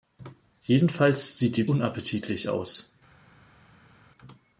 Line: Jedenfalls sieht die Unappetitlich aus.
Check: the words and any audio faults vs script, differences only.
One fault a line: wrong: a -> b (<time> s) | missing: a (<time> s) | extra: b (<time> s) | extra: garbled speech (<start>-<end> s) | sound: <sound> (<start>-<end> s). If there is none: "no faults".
no faults